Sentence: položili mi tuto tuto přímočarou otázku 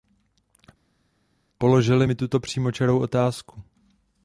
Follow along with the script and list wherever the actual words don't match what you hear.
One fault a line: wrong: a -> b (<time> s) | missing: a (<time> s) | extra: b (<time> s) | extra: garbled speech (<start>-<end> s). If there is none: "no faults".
missing: tuto (2.4 s)